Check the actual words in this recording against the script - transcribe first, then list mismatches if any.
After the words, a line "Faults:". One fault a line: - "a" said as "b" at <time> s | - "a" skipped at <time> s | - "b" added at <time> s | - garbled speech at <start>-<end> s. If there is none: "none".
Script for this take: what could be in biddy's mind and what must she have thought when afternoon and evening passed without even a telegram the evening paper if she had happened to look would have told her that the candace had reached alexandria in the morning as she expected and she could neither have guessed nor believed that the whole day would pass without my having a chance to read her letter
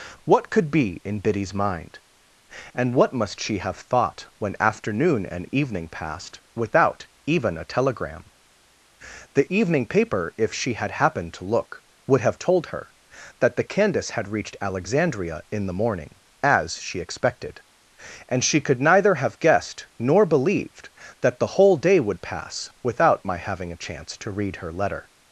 what could be in biddy's mind and what must she have thought when afternoon and evening passed without even a telegram the evening paper if she had happened to look would have told her that the candace had reached alexandria in the morning as she expected and she could neither have guessed nor believed that the whole day would pass without my having a chance to read her letter
Faults:
none